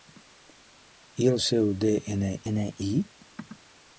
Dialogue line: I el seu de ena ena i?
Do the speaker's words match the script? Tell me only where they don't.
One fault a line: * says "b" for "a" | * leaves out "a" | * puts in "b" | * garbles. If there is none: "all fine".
all fine